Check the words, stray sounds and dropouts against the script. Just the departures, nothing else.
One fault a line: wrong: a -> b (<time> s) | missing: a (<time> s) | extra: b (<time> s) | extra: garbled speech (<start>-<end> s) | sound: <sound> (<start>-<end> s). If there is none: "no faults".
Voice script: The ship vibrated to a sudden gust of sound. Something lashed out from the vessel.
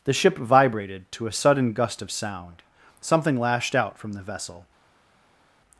no faults